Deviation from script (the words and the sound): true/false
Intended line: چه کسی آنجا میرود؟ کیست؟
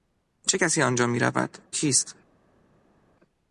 false